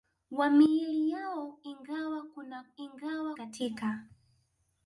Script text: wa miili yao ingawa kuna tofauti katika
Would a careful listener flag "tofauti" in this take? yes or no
yes